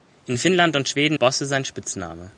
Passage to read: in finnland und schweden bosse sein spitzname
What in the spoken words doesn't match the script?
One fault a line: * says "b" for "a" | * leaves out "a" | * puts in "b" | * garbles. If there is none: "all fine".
all fine